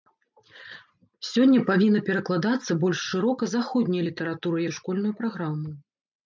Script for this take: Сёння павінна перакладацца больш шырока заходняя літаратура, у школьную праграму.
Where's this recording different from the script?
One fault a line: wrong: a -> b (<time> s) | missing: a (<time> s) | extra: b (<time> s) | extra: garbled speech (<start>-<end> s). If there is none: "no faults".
no faults